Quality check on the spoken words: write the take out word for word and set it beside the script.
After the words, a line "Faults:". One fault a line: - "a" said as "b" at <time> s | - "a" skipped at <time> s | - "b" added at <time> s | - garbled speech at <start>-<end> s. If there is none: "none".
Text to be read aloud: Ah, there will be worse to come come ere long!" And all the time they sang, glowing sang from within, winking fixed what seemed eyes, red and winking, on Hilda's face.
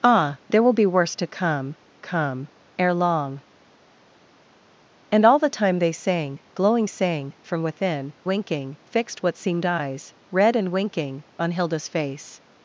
Ah, there will be worse to come come ere long!" And all the time they sang, glowing sang from within, winking fixed what seemed eyes, red and winking, on Hilda's face.
Faults:
none